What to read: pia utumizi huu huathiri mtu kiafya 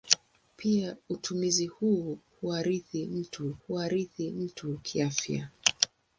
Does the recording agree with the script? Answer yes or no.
no